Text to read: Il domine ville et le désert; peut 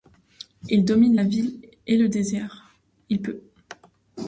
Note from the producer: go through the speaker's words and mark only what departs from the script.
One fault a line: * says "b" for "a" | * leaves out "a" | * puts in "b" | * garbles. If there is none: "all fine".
* puts in "la"
* puts in "il"